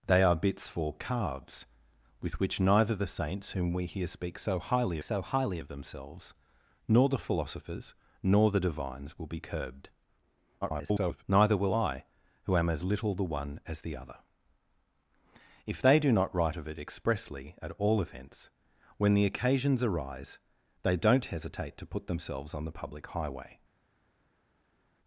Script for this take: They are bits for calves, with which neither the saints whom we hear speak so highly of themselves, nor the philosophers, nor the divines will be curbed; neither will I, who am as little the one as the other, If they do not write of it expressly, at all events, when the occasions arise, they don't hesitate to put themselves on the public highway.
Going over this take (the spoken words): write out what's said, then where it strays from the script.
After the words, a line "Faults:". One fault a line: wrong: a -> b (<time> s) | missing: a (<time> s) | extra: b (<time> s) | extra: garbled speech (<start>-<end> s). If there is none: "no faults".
They are bits for calves, with which neither the saints whom we hear speak so highly so highly of themselves, nor the philosophers, nor the divines will be curbed; [garbled] neither will I, who am as little the one as the other, If they do not write of it expressly, at all events, when the occasions arise, they don't hesitate to put themselves on the public highway.
Faults:
extra: so highly (5.0 s)
extra: garbled speech (10.6-11.2 s)